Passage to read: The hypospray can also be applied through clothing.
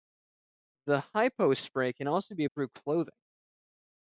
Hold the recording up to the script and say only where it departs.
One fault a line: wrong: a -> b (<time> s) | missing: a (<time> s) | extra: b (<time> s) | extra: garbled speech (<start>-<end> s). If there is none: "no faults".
missing: applied (2.5 s)